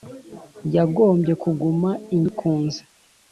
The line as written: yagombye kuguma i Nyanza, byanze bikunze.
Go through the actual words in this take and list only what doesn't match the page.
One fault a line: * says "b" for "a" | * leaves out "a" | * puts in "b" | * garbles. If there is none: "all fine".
* leaves out "Nyanza byanze"